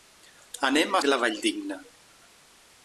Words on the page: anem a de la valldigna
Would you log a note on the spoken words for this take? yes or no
no